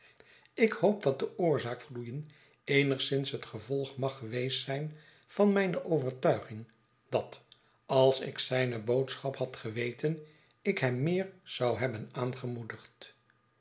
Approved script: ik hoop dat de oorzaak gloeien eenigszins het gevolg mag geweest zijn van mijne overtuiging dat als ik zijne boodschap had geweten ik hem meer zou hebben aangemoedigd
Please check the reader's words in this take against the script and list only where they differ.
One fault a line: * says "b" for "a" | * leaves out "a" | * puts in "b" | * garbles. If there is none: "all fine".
all fine